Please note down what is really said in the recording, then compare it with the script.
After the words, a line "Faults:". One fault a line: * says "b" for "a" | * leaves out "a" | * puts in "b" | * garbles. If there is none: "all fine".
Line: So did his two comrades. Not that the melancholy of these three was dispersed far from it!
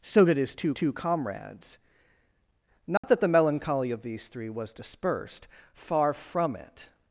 So did his two two comrades. Not that the melancholy of these three was dispersed far from it!
Faults:
* puts in "two"